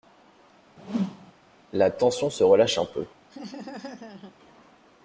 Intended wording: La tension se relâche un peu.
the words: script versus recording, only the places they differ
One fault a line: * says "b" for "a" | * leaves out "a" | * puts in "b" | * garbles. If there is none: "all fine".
all fine